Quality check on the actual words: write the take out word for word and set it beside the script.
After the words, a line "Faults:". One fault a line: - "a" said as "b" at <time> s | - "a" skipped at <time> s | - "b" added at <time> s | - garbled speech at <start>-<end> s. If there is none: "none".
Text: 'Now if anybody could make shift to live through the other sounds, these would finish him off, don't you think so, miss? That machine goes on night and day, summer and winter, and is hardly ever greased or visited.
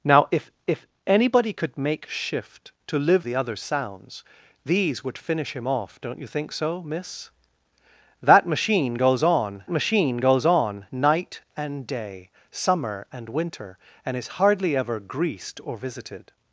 'Now if if anybody could make shift to live the other sounds, these would finish him off, don't you think so, miss? That machine goes on machine goes on night and day, summer and winter, and is hardly ever greased or visited.
Faults:
- "if" added at 0.7 s
- "through" skipped at 3.3 s
- "machine goes on" added at 9.7 s